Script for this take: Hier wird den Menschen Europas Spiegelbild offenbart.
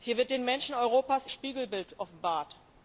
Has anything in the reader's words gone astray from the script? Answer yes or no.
no